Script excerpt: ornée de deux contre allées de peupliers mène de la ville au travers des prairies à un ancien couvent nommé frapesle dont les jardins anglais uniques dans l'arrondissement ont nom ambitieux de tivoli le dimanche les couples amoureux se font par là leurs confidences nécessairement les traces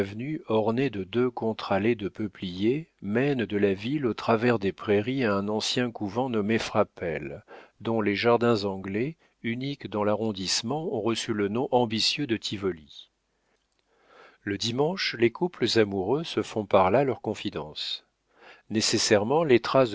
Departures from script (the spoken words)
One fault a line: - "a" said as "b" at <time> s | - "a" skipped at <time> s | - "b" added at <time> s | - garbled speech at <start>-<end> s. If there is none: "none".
- "reçu le" added at 11.0 s